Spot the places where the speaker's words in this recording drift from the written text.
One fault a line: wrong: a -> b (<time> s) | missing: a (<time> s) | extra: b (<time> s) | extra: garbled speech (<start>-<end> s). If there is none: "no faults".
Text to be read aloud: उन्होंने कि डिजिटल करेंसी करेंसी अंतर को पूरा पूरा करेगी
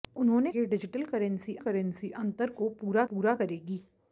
no faults